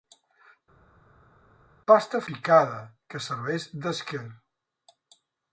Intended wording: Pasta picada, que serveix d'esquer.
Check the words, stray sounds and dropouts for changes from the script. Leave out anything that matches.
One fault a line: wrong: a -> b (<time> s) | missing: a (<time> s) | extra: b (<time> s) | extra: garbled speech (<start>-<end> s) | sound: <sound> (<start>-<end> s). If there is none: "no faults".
no faults